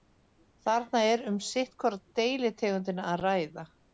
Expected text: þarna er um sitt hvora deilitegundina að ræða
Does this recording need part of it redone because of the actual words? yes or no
no